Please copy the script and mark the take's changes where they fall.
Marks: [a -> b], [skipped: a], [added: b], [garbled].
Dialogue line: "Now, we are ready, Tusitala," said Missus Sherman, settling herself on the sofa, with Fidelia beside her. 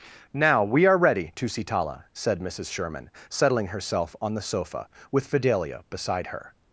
"Now, we are ready, Tusitala," said Missus Sherman, settling herself on the sofa, with Fidelia beside her.